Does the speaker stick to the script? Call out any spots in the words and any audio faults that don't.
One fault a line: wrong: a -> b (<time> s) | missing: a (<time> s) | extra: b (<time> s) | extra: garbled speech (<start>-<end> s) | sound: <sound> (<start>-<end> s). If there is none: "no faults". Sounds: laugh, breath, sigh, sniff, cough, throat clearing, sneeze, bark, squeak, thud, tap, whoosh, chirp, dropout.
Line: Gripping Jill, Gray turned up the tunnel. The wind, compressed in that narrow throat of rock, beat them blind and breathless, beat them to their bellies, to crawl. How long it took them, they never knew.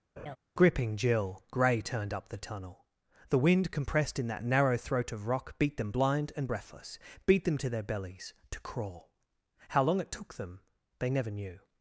sound: laugh (0.2-0.4 s)